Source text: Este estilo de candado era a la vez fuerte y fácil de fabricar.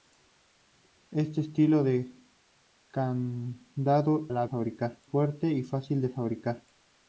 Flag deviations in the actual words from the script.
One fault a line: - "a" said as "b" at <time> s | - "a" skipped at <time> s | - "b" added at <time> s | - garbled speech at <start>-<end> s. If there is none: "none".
- "era" skipped at 4.3 s
- "vez" said as "fabricar" at 4.4 s